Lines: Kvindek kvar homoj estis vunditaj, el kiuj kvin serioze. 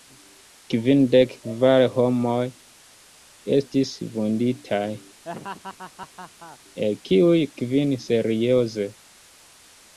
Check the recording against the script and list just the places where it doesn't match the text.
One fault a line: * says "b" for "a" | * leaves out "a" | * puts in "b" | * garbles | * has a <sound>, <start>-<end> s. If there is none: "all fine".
* has a laugh, 5.2-6.6 s